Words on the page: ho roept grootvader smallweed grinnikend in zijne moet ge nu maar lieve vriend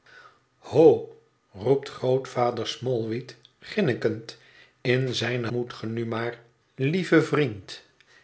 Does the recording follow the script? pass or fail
pass